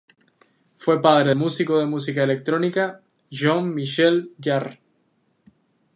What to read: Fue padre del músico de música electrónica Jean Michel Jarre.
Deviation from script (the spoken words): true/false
true